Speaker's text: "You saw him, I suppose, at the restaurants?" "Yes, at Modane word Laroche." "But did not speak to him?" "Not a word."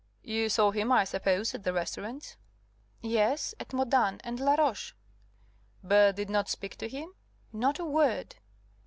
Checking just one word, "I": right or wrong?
right